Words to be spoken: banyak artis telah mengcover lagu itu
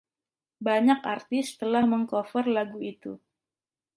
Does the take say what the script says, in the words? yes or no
yes